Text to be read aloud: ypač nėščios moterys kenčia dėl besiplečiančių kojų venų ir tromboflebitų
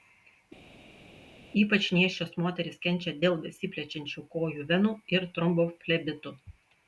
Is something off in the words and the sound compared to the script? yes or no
no